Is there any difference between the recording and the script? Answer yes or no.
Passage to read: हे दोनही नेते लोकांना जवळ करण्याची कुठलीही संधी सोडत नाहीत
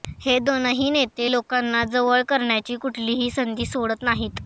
no